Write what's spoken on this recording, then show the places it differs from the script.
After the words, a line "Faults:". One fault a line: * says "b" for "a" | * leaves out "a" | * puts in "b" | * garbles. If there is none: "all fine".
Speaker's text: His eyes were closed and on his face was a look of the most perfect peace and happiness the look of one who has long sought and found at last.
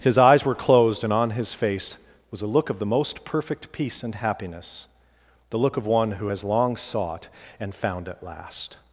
His eyes were closed and on his face was a look of the most perfect peace and happiness the look of one who has long sought and found at last.
Faults:
all fine